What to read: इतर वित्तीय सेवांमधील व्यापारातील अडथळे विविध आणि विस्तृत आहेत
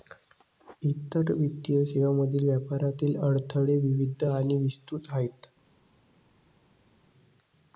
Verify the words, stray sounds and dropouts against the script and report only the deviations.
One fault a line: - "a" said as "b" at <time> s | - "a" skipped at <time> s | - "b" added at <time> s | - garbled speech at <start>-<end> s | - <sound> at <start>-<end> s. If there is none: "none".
none